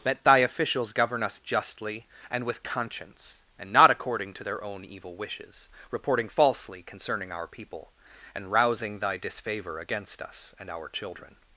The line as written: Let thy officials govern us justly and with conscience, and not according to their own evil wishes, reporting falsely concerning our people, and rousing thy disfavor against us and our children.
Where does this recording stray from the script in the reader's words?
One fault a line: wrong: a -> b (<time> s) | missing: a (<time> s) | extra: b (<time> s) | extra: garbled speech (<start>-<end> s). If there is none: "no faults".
no faults